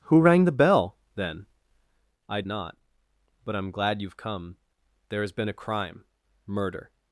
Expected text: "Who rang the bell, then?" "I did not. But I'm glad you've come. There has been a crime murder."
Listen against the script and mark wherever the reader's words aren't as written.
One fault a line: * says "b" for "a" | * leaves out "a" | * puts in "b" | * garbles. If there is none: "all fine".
* leaves out "did"